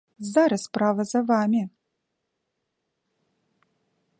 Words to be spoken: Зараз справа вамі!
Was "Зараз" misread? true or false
false